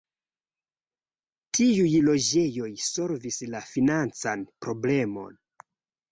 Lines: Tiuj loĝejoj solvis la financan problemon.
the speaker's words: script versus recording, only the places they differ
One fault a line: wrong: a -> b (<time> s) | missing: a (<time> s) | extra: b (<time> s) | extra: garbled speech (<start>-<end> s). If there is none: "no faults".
no faults